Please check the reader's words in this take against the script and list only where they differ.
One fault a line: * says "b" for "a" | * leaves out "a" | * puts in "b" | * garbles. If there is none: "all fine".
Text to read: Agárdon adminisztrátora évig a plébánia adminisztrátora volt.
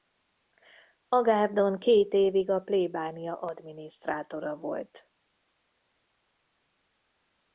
* says "két" for "adminisztrátora"